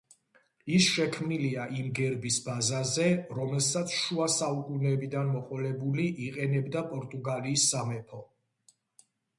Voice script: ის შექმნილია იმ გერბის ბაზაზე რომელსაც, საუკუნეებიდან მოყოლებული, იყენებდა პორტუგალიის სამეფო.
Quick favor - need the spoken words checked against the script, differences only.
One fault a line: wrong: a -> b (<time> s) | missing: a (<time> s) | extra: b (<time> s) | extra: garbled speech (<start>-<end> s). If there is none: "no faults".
extra: შუა (4.0 s)